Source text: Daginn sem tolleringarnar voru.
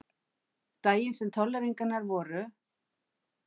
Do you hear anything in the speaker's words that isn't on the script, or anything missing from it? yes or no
no